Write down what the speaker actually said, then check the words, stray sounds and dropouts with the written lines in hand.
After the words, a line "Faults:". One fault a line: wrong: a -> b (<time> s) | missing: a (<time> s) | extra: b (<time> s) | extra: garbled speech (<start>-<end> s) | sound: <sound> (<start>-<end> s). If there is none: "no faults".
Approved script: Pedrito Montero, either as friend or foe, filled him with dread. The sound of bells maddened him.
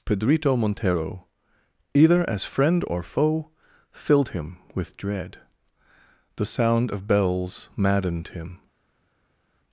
Pedrito Montero, either as friend or foe, filled him with dread. The sound of bells maddened him.
Faults:
no faults